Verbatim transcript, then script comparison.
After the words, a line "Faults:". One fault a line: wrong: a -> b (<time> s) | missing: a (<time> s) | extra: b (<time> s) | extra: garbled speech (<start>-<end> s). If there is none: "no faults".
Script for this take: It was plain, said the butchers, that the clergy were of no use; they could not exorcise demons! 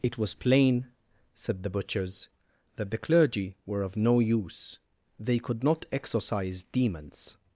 It was plain, said the butchers, that the clergy were of no use; they could not exorcise demons!
Faults:
no faults